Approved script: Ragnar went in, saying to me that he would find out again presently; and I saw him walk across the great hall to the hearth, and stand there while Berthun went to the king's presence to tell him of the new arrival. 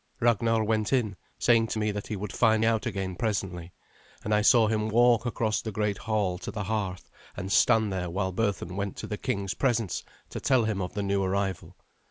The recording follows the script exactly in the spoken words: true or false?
true